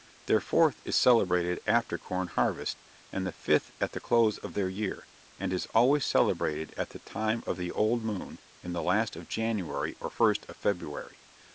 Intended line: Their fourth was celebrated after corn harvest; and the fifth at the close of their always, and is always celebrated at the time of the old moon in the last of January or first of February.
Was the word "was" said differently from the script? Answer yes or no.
yes